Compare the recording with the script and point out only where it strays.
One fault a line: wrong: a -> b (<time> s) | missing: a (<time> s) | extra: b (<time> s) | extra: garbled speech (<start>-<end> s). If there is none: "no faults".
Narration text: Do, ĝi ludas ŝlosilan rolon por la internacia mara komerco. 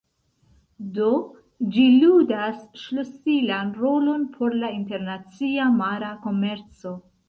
no faults